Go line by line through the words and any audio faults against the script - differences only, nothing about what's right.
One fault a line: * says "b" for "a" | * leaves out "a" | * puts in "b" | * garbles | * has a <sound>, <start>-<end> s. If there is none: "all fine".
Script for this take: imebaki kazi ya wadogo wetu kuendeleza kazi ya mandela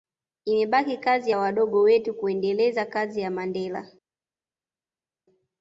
all fine